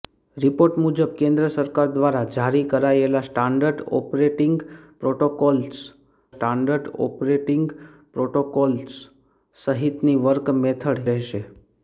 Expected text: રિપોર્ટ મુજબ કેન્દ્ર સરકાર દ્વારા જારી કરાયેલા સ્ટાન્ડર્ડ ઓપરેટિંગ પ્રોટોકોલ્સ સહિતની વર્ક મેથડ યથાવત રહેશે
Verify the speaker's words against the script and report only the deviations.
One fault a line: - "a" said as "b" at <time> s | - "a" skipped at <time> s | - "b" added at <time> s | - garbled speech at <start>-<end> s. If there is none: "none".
- "સ્ટાન્ડર્ડ ઓપરેટિંગ પ્રોટોકોલ્સ" added at 6.3 s
- "યથાવત" skipped at 11.0 s